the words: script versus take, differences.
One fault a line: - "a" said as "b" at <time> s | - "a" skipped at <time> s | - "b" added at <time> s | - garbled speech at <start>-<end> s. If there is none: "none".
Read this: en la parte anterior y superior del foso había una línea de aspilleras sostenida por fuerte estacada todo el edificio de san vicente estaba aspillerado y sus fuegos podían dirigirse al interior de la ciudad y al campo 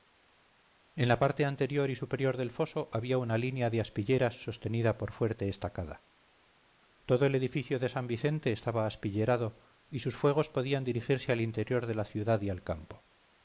none